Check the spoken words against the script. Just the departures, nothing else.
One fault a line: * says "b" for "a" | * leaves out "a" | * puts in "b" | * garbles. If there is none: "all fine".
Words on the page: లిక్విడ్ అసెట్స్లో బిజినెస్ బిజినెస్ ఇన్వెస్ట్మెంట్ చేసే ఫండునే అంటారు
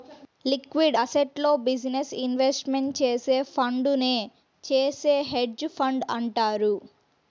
* leaves out "బిజినెస్"
* puts in "చేసే హెడ్జ్ ఫండ్"